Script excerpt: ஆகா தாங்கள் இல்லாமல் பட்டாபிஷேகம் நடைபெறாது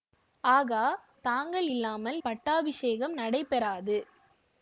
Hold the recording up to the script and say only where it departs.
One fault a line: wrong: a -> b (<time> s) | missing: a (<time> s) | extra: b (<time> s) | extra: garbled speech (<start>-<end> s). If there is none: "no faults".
no faults